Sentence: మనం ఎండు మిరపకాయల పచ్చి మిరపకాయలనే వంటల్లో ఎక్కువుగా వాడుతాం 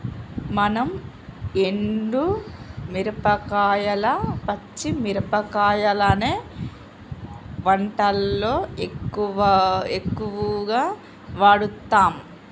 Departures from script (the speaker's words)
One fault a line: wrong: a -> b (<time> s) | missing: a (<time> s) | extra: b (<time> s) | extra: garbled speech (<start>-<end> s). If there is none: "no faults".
no faults